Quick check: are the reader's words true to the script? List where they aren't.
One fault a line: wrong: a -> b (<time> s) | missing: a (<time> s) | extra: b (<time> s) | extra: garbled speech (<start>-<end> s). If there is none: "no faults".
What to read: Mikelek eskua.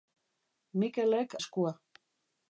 no faults